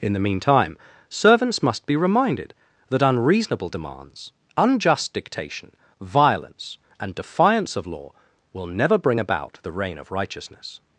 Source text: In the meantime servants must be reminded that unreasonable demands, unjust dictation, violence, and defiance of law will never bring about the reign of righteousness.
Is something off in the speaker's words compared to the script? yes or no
no